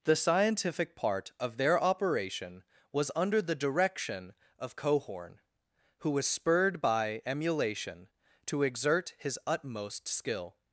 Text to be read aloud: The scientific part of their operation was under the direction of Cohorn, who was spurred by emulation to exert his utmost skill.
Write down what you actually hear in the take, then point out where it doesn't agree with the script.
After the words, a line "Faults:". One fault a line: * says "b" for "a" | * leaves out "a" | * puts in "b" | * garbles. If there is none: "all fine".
The scientific part of their operation was under the direction of Cohorn, who was spurred by emulation to exert his utmost skill.
Faults:
all fine